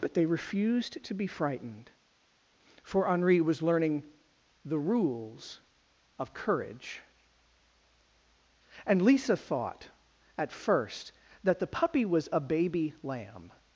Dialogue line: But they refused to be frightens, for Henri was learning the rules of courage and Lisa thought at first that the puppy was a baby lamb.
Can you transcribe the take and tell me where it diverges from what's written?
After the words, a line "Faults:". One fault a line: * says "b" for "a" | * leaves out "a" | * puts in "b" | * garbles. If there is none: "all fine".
But they refused to be frightened, for Henri was learning the rules of courage and Lisa thought at first that the puppy was a baby lamb.
Faults:
* says "frightened" for "frightens"